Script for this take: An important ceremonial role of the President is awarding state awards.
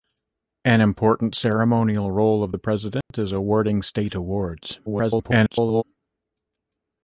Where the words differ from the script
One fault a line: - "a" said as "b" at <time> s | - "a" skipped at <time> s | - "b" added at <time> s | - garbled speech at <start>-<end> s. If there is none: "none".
- garbled speech at 4.9-5.8 s